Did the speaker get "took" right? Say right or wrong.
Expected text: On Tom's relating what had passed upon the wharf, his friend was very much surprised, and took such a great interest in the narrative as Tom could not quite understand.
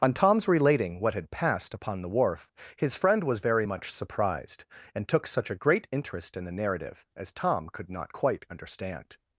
right